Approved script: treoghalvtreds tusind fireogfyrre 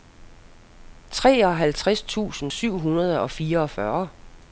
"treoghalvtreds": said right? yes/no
yes